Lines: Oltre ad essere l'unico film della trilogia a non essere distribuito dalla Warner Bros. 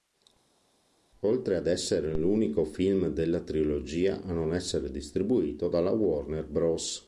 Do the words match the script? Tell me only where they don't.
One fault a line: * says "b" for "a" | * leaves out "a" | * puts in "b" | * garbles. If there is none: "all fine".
all fine